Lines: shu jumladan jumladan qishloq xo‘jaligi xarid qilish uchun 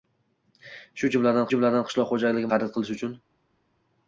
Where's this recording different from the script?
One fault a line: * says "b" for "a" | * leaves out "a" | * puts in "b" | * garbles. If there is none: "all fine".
all fine